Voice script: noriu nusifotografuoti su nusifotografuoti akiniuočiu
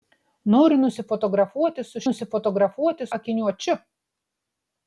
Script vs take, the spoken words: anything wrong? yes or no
no